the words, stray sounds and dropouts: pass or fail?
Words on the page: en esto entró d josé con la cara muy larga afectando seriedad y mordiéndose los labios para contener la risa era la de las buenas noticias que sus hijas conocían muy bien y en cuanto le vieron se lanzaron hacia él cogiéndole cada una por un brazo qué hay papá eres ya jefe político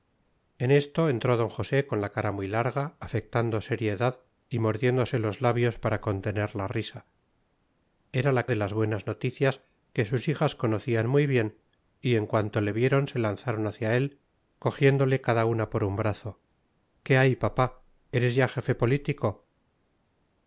pass